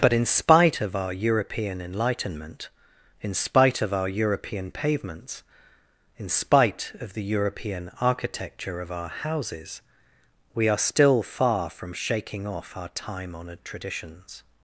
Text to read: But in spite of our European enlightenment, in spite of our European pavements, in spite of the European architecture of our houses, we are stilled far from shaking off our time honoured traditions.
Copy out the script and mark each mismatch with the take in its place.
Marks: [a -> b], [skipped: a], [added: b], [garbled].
But in spite of our European enlightenment, in spite of our European pavements, in spite of the European architecture of our houses, we are [stilled -> still] far from shaking off our time honoured traditions.